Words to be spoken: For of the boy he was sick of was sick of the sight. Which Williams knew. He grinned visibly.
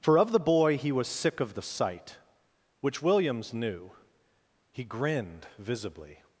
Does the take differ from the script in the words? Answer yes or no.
yes